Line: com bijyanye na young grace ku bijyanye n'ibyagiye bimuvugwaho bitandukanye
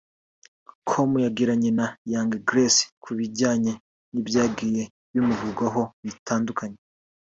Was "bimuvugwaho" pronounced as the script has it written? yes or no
yes